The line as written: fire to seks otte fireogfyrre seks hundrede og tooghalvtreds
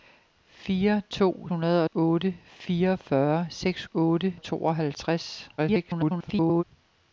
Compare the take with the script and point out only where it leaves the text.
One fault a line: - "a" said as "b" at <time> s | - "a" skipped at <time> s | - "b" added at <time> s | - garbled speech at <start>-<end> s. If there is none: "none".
- "seks" said as "hundrede" at 1.5 s
- "hundrede" said as "otte" at 3.9 s
- garbled speech at 5.6-6.6 s